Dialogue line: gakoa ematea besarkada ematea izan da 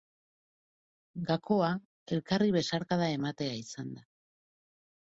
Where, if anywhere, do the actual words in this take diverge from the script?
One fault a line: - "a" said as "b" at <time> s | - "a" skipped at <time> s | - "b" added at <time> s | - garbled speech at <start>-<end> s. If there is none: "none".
- "ematea" said as "elkarri" at 2.2 s